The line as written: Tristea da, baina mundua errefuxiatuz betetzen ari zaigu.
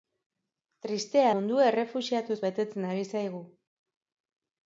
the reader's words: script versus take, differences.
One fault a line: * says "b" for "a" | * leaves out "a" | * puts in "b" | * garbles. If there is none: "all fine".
* leaves out "da baina"